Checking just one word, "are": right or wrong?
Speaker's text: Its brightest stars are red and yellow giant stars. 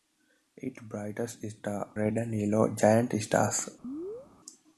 wrong